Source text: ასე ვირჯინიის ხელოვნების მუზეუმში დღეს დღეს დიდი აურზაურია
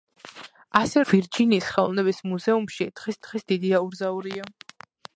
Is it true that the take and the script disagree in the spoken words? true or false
false